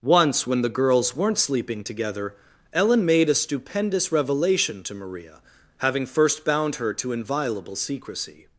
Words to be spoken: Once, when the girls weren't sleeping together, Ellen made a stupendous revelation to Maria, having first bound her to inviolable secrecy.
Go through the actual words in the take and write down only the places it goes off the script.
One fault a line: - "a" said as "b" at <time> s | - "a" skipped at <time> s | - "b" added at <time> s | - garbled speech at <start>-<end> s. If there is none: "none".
none